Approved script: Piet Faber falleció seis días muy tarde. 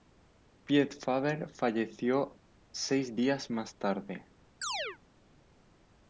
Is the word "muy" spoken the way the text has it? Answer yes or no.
no